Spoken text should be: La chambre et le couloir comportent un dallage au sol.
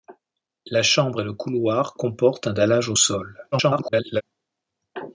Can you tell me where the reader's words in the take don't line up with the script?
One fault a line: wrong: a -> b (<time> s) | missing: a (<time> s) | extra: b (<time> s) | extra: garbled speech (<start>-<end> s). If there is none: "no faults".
extra: garbled speech (3.5-4.2 s)